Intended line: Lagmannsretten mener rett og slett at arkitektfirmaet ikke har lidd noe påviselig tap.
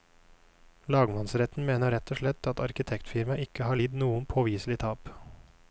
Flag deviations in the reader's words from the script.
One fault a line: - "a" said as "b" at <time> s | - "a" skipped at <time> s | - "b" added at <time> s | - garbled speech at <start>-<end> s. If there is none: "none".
none